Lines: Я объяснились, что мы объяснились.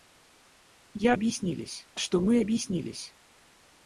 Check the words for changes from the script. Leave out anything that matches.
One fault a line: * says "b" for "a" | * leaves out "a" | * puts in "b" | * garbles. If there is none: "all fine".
all fine